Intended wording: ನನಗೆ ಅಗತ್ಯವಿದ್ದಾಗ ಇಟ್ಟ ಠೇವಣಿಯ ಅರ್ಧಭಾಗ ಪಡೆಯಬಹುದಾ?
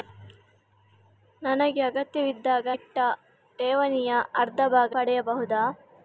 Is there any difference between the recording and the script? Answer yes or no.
no